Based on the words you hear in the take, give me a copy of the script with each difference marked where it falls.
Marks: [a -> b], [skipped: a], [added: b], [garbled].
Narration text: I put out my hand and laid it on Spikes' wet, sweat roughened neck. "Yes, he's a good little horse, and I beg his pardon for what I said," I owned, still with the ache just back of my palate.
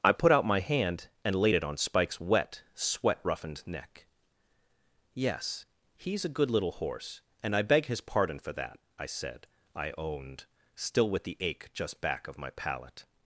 I put out my hand and laid it on Spikes' wet, sweat roughened neck. "Yes, he's a good little horse, and I beg his pardon for [what -> that] I said," I owned, still with the ache just back of my palate.